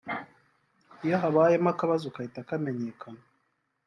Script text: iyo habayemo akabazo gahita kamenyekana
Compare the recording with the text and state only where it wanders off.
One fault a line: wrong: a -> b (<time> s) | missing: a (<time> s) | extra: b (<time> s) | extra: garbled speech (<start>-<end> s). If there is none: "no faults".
no faults